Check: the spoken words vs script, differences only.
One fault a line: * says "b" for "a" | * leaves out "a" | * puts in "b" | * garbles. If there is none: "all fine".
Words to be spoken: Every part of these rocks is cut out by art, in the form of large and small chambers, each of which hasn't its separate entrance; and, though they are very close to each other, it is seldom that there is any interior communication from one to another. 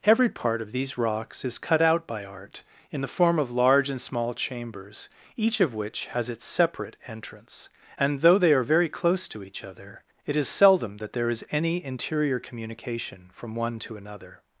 * says "has" for "hasn't"